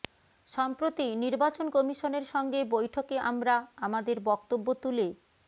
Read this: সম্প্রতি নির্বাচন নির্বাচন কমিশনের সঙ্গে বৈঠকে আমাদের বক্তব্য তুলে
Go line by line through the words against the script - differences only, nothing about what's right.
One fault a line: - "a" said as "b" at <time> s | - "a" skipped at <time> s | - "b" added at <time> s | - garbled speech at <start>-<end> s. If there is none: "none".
- "নির্বাচন" skipped at 1.7 s
- "আমরা" added at 3.3 s